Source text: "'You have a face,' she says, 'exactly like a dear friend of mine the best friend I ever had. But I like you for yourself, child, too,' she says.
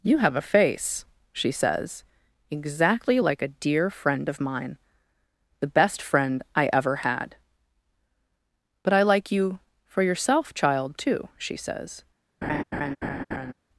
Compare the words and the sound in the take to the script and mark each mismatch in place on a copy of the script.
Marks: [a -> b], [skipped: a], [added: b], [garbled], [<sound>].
"'You have a face,' she says, 'exactly like a dear friend of mine the best friend I ever had. But I like you for yourself, child, too,' she says. [laugh]